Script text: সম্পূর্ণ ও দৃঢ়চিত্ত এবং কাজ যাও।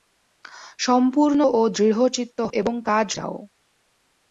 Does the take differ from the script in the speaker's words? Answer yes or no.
no